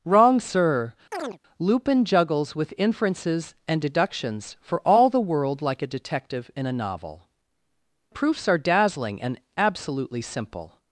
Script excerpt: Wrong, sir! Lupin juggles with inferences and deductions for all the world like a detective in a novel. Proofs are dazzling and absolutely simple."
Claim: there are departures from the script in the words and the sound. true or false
true